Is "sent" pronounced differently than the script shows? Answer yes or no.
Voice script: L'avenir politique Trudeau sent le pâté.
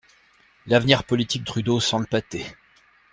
no